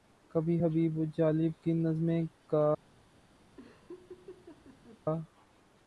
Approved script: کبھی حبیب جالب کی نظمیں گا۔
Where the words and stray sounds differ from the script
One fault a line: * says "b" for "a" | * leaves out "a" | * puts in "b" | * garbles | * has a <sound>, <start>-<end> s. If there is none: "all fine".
* has a laugh, 3.6-5.0 s